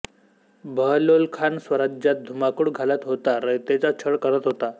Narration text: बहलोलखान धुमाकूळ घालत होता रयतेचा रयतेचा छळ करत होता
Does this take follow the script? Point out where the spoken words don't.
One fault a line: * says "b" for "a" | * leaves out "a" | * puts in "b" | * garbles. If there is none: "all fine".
* puts in "स्वराज्यात"
* leaves out "रयतेचा"